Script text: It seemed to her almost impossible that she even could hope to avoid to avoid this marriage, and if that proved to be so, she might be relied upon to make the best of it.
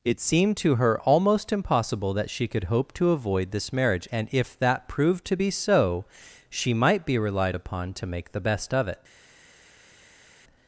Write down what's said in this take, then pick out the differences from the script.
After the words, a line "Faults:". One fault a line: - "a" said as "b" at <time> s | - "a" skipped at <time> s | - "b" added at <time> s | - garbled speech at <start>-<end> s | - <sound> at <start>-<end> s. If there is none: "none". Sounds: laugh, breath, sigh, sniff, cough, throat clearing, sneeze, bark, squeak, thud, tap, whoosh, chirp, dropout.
It seemed to her almost impossible that she could hope to avoid this marriage, and if that proved to be so, she might be relied upon to make the best of it.
Faults:
- "even" skipped at 2.5 s
- "to avoid" skipped at 3.5 s